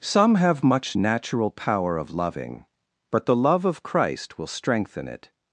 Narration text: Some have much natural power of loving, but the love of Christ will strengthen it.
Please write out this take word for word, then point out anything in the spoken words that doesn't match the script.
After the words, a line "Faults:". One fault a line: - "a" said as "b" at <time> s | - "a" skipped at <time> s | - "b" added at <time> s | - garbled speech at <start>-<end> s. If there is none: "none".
Some have much natural power of loving, but the love of Christ will strengthen it.
Faults:
none